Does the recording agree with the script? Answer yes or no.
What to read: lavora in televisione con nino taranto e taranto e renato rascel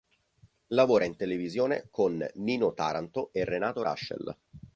no